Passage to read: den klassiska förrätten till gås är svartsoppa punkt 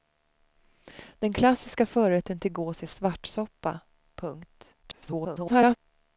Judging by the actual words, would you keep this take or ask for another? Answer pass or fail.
fail